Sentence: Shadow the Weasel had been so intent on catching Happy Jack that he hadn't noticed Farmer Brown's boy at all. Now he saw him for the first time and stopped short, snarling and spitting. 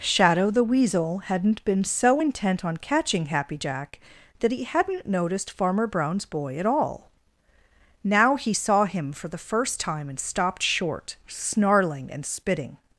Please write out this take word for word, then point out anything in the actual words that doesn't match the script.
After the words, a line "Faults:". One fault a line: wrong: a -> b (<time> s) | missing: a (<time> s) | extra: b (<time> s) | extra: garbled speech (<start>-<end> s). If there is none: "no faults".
Shadow the Weasel hadn't been so intent on catching Happy Jack that he hadn't noticed Farmer Brown's boy at all. Now he saw him for the first time and stopped short, snarling and spitting.
Faults:
wrong: had -> hadn't (1.2 s)